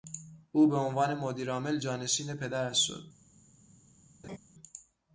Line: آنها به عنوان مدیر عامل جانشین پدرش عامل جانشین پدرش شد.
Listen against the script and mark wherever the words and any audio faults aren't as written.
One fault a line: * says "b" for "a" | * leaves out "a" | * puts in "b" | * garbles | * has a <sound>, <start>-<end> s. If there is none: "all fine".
* says "او" for "آنها"
* leaves out "عامل جانشین پدرش"
* has a laugh, 4.2-4.4 s